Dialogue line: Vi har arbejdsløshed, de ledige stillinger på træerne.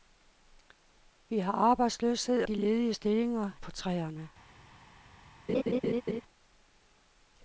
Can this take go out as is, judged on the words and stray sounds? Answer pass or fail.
fail